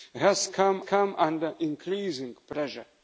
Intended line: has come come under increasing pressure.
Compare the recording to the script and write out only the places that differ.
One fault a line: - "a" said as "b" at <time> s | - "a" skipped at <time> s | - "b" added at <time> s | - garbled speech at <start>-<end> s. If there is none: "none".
none